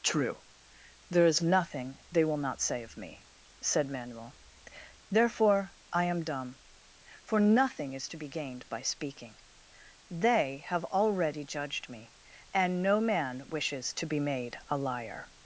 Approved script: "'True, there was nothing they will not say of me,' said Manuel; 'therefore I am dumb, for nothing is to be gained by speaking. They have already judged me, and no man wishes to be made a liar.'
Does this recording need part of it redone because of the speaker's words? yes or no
yes